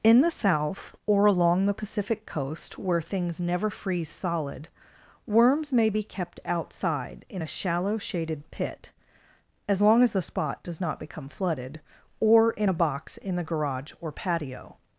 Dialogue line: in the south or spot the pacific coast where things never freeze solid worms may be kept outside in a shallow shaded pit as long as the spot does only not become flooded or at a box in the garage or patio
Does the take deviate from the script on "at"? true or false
true